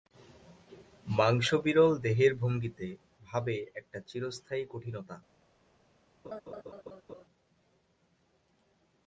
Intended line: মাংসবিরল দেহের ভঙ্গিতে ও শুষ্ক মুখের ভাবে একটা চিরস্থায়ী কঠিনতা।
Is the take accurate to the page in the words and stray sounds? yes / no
no